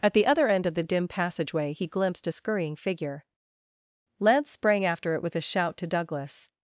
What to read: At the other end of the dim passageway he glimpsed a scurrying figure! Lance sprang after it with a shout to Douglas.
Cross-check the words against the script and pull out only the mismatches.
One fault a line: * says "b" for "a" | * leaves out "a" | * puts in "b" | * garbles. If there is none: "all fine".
all fine